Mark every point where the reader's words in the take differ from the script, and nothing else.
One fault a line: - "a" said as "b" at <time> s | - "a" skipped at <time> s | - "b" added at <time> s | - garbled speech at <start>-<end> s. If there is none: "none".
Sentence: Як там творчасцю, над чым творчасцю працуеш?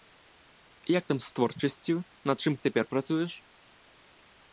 - "з" added at 1.2 s
- "творчасцю" said as "цяпер" at 2.6 s